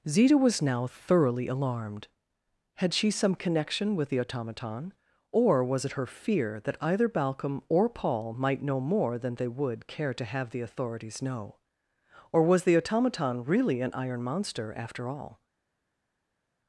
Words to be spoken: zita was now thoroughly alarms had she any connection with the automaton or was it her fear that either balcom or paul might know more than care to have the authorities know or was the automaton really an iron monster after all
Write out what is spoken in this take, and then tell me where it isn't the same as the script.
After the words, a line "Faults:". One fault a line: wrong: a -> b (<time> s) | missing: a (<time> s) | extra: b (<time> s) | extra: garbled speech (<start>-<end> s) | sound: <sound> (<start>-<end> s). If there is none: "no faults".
zita was now thoroughly alarmed had she some connection with the automaton or was it her fear that either balcom or paul might know more than they would care to have the authorities know or was the automaton really an iron monster after all
Faults:
wrong: alarms -> alarmed (1.5 s)
wrong: any -> some (3.1 s)
extra: they would (9.3 s)